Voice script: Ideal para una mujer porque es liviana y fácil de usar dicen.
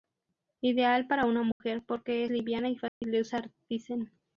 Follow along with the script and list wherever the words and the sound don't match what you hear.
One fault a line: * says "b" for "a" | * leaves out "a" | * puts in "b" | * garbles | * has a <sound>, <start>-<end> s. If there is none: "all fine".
* has a dropout, 1.5-1.6 s
* leaves out "es"
* has a dropout, 2.9-3.0 s